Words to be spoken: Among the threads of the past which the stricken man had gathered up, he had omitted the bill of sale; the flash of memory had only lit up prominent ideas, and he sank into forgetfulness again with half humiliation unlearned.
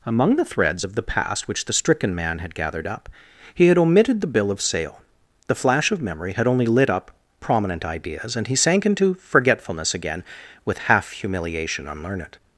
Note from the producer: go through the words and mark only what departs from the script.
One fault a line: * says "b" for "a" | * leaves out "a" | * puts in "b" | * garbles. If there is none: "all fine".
all fine